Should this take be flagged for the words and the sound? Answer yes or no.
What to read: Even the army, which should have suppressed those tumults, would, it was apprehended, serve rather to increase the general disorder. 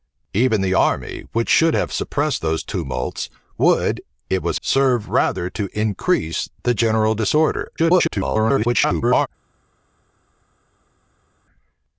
yes